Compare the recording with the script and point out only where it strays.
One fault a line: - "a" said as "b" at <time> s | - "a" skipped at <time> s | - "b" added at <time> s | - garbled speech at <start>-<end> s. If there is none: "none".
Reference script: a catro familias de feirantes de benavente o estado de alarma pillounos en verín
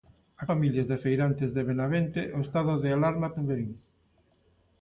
- "catro" skipped at 0.5 s
- "pillounos" skipped at 3.3 s